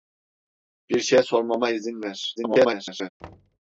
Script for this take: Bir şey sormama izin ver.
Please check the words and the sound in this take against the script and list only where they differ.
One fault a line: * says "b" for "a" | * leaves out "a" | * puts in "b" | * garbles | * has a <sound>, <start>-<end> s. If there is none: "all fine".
* garbles
* has a thud, 3.2-3.6 s